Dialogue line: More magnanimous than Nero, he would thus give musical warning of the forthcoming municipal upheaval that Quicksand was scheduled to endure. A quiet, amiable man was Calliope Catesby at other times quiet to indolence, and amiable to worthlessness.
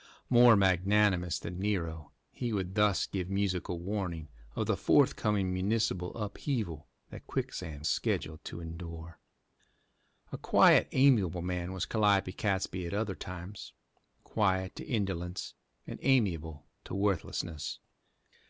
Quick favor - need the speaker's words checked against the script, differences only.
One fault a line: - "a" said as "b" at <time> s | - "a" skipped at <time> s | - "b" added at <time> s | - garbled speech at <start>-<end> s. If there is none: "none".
- "was" skipped at 7.8 s